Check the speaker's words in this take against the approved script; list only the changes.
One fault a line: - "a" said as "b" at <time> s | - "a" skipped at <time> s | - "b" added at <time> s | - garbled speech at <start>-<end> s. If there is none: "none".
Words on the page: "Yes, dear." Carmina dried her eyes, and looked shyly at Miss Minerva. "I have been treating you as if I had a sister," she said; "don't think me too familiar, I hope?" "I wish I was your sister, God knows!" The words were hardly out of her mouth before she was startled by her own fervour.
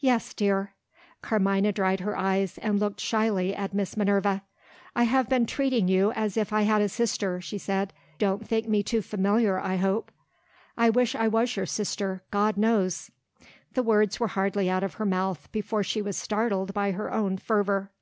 none